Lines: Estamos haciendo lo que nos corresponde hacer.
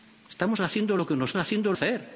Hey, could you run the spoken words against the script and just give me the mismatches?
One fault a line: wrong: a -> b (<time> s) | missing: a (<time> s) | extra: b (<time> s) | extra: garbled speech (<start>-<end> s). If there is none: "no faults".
wrong: corresponde -> haciendo (1.3 s)